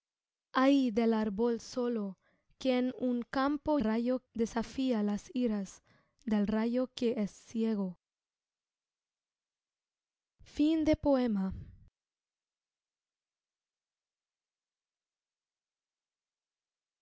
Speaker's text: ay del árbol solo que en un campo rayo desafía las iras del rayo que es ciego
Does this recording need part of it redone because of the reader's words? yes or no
no